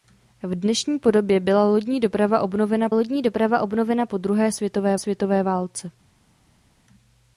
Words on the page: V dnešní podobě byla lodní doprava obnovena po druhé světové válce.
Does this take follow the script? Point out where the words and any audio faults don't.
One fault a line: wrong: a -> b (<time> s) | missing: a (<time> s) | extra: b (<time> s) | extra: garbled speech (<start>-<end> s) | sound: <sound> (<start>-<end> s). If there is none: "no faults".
extra: lodní doprava obnovena (2.9 s)
extra: světové (5.0 s)